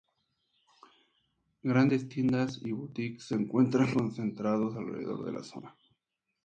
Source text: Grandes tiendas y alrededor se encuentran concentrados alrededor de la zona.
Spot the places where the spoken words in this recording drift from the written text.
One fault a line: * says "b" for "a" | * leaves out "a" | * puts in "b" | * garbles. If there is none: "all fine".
* says "boutiques" for "alrededor"